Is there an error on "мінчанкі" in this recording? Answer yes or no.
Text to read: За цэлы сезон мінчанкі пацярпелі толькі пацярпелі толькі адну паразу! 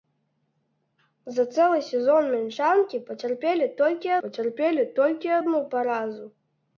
no